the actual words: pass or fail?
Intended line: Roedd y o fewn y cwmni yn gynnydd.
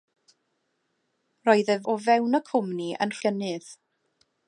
pass